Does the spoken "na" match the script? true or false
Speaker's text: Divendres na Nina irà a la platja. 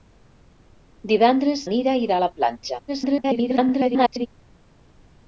false